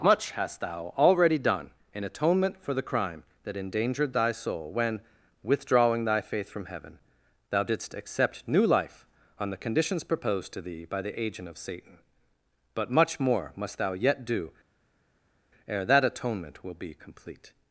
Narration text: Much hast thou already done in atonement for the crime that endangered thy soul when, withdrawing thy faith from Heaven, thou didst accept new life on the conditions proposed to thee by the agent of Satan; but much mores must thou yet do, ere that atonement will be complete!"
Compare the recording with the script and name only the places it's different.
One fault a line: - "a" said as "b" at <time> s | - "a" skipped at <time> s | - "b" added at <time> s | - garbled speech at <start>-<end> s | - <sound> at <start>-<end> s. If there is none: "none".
- "mores" said as "more" at 13.2 s